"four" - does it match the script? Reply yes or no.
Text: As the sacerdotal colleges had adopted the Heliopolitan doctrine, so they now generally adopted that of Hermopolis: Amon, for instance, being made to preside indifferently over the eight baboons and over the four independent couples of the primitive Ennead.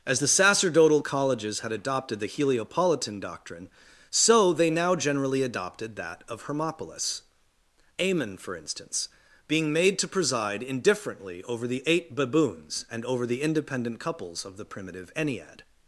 no